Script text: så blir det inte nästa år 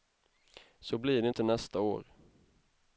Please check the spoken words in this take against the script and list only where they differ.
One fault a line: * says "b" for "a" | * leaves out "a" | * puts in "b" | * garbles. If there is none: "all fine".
all fine